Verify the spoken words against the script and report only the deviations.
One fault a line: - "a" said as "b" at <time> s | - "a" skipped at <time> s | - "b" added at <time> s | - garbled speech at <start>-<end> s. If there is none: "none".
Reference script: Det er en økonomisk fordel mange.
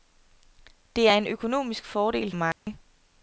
none